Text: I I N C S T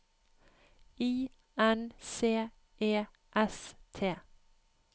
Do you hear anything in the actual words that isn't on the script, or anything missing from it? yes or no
yes